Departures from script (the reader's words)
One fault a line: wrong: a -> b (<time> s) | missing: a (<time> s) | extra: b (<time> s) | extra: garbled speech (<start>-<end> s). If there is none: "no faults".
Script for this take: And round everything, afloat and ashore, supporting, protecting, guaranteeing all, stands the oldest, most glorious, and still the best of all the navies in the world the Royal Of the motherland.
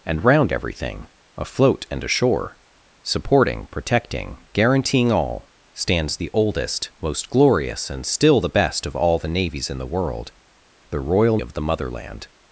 no faults